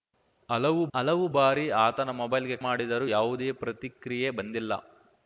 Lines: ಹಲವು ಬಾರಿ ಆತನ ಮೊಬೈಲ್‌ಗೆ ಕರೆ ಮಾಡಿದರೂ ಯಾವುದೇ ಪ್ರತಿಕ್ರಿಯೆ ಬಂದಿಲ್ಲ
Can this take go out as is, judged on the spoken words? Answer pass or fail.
fail